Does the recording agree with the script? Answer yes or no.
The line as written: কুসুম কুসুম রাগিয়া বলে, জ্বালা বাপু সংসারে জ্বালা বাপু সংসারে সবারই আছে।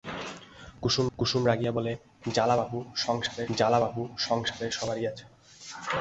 yes